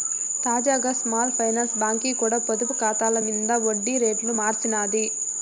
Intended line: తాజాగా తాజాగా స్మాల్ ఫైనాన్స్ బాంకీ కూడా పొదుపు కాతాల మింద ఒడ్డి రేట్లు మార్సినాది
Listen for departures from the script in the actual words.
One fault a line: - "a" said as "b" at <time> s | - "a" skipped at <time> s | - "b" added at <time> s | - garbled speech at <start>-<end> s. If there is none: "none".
- "తాజాగా" skipped at 0.9 s